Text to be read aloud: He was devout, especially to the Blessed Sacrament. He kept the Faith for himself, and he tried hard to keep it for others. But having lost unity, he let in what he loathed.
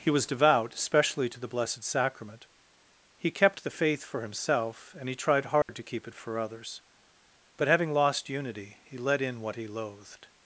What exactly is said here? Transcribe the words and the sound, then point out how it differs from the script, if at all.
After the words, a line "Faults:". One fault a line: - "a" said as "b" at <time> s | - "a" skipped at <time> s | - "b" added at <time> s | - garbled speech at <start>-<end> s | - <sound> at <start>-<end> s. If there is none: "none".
He was devout, especially to the Blessed Sacrament. He kept the Faith for himself, and he tried hard to keep it for others. But having lost unity, he let in what he loathed.
Faults:
- dropout at 5.6-5.7 s